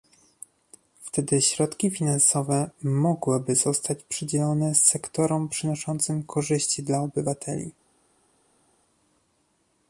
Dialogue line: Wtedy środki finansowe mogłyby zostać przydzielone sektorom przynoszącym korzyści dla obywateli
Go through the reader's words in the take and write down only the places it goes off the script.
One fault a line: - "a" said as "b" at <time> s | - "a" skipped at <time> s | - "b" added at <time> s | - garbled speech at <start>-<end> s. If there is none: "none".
none